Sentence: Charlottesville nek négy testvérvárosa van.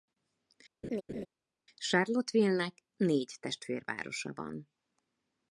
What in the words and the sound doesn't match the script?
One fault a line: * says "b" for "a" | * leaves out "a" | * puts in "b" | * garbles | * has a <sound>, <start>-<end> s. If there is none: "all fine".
* has a laugh, 0.8-1.3 s